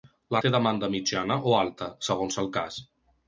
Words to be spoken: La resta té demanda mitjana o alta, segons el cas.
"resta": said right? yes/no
no